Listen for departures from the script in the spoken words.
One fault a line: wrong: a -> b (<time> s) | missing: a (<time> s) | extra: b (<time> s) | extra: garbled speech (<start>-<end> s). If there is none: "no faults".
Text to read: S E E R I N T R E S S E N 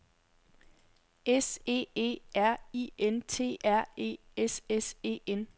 no faults